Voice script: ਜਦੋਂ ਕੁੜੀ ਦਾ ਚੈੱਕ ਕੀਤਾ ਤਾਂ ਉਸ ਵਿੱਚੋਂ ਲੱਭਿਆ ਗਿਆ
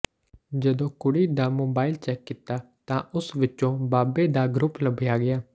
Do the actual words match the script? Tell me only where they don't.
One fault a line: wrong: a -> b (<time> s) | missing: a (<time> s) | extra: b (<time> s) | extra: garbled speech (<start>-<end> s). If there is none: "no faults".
extra: ਮੋਬਾਈਲ (1.5 s)
extra: ਬਾਬੇ ਦਾ ਗਰੁੱਪ (3.9 s)